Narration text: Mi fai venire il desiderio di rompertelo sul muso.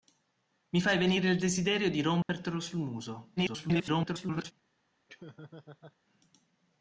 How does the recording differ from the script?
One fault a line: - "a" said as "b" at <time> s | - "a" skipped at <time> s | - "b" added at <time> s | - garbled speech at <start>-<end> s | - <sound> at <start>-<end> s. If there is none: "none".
- dropout at 2.2-2.3 s
- garbled speech at 3.4-4.5 s
- laugh at 5.1-6.0 s